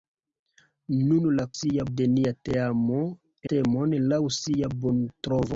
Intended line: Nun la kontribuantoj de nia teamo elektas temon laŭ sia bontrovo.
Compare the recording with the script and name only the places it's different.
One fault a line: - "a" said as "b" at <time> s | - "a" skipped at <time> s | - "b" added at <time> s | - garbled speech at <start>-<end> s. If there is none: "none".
- "kontribuantoj" said as "sia" at 1.6 s
- "elektas" skipped at 3.0 s